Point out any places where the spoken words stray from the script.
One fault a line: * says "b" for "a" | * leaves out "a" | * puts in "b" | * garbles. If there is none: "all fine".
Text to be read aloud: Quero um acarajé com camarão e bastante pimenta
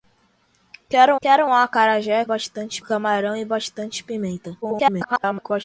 * puts in "quero"
* says "bastante" for "com"
* garbles